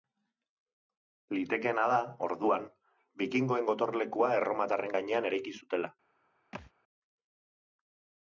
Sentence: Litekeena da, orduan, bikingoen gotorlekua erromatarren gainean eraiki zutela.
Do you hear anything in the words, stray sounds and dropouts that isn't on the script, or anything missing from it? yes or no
yes